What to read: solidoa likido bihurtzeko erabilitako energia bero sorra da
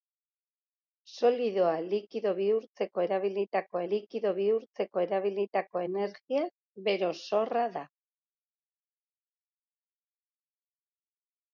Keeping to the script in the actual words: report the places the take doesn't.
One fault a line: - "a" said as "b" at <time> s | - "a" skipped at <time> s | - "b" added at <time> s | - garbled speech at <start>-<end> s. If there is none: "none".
- "likido bihurtzeko erabilitako" added at 3.9 s